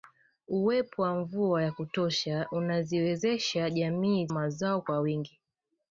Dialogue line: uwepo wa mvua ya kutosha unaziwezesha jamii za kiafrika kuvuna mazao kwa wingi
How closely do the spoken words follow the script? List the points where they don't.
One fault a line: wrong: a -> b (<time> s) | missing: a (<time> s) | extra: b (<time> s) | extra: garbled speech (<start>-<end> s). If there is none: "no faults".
missing: za kiafrika kuvuna (4.3 s)